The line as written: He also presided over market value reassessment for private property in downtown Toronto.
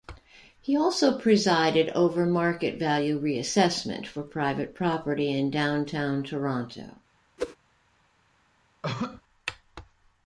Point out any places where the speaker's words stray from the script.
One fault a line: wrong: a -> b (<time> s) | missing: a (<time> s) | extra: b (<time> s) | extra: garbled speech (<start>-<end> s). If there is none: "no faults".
no faults